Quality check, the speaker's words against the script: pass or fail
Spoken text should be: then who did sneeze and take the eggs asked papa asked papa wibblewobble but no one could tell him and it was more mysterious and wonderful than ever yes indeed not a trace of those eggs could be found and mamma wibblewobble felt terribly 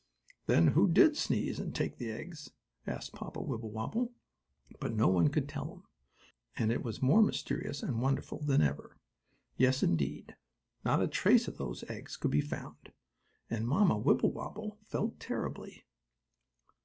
fail